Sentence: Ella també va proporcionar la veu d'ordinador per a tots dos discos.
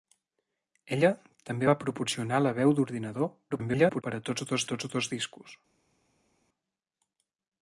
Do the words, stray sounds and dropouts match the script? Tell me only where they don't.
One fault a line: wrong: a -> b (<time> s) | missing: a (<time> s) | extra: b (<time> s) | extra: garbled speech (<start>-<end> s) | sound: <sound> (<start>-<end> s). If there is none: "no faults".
extra: garbled speech (3.5-4.0 s)
extra: tots dos (4.7 s)